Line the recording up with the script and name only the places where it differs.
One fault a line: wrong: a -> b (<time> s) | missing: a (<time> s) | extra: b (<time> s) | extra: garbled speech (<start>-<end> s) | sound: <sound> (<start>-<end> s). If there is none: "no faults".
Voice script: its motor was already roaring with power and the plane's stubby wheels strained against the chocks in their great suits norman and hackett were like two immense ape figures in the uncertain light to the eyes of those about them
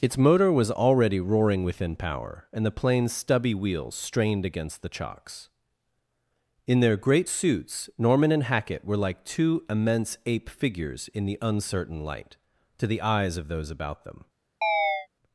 wrong: with -> within (1.6 s)
sound: chirp (14.6-15.1 s)